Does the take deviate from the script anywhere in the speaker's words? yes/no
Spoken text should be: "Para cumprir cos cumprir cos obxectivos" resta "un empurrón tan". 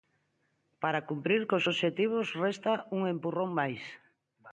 yes